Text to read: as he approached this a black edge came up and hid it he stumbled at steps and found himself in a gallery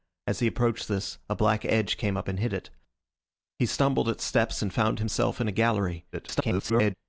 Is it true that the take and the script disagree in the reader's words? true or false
true